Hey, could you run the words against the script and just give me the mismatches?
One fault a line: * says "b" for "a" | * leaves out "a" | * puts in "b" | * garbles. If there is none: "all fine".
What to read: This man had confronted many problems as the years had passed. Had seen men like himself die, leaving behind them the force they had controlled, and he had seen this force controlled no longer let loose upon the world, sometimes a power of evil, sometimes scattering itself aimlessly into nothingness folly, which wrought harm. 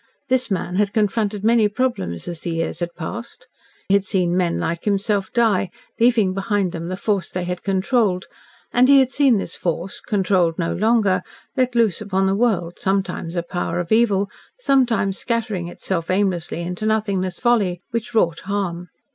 all fine